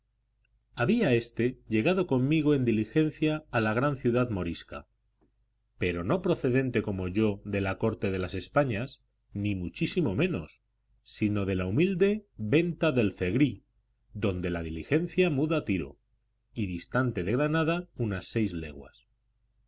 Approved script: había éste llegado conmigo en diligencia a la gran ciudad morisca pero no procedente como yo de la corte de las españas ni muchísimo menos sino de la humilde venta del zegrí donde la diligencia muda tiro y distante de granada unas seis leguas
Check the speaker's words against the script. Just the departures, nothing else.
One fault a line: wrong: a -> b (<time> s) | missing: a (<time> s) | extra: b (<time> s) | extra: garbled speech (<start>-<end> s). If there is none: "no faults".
no faults